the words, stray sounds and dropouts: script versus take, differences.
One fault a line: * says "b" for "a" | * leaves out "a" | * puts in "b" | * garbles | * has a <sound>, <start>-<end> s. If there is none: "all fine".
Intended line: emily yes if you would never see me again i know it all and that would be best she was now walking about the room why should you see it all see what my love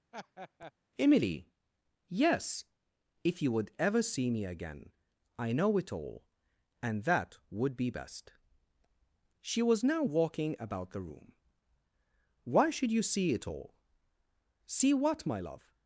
* has a laugh, 0.1-0.7 s
* says "ever" for "never"